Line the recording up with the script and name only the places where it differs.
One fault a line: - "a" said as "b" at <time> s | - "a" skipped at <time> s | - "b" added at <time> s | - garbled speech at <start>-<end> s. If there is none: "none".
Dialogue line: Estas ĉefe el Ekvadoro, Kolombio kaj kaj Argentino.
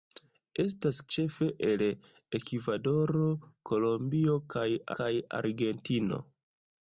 none